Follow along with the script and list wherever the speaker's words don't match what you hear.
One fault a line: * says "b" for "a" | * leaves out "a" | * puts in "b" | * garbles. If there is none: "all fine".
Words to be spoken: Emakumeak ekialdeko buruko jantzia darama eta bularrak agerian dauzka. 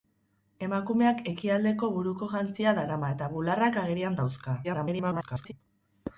* garbles